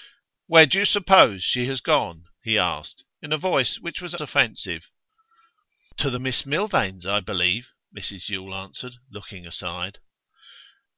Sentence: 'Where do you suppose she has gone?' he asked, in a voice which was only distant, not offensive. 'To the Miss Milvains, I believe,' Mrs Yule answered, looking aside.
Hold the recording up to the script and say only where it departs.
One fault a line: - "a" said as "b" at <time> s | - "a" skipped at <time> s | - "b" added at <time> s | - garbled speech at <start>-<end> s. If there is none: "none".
- "only distant not" skipped at 4.2 s